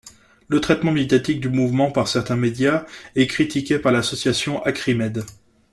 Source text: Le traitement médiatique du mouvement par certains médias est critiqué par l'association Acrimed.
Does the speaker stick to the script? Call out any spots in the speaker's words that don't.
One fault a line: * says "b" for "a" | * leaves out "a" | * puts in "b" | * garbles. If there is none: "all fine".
all fine